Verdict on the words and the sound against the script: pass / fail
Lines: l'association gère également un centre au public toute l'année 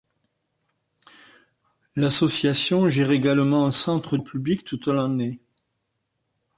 pass